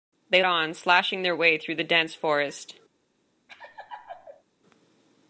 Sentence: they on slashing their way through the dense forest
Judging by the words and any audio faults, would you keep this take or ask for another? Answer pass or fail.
fail